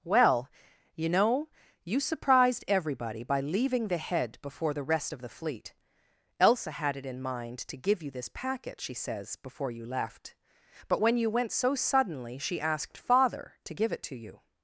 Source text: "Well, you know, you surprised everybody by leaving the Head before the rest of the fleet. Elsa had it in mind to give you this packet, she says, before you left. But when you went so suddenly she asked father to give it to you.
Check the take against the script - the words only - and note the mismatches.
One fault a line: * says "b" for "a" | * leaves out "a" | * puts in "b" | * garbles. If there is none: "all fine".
all fine